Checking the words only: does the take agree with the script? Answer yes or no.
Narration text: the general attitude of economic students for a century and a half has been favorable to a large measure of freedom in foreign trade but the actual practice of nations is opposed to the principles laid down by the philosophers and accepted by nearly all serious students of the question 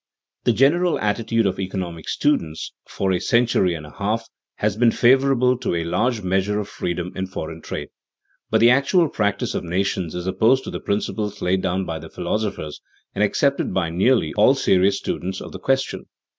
yes